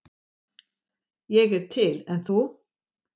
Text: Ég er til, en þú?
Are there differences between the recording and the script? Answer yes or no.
no